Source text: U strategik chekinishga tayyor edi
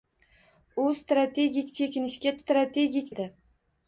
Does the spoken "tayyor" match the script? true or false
false